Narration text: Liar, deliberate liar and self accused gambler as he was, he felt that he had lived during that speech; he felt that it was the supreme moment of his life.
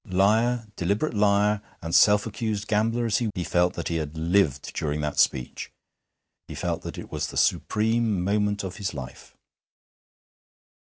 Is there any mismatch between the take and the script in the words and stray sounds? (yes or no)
yes